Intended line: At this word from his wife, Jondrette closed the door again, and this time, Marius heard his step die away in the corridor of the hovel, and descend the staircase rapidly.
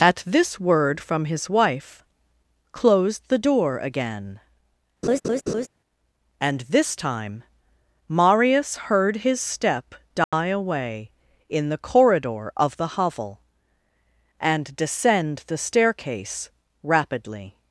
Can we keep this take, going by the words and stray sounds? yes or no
no